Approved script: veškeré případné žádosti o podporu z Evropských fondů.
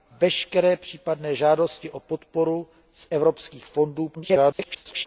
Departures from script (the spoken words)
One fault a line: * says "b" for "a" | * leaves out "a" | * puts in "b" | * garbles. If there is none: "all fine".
* garbles